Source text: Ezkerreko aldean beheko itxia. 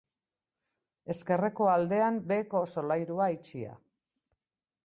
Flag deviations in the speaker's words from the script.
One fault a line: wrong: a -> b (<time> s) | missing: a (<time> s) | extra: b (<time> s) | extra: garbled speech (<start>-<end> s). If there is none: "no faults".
extra: solairua (2.8 s)